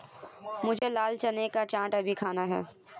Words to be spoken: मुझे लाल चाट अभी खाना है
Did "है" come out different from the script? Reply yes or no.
no